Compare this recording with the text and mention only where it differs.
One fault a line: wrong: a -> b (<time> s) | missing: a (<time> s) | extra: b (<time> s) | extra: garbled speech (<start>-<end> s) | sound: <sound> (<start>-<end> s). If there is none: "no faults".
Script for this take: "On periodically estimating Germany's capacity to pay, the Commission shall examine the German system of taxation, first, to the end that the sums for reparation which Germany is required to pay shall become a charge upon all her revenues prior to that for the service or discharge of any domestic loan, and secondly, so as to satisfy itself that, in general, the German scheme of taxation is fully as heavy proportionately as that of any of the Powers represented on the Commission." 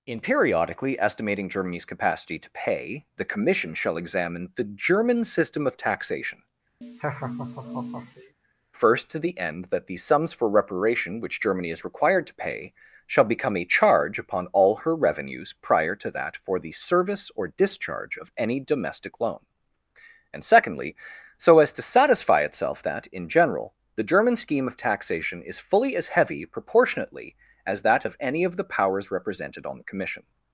wrong: On -> In (0.1 s)
sound: laugh (6.8-8.3 s)